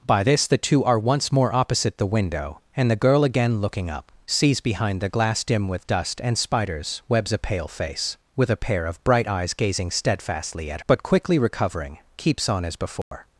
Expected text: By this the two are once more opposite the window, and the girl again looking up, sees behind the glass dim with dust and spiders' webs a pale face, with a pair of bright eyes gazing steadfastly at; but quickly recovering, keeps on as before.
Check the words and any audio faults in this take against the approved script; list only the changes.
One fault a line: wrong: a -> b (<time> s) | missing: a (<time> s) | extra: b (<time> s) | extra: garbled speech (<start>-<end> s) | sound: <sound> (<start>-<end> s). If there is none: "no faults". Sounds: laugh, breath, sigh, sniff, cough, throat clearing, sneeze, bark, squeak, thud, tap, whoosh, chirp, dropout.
sound: dropout (13.0-13.1 s)